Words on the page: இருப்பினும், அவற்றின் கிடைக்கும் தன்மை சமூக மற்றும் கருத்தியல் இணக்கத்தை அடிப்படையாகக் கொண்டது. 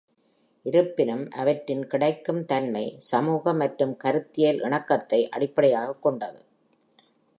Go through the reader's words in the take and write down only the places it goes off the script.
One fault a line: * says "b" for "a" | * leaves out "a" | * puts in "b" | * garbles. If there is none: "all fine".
all fine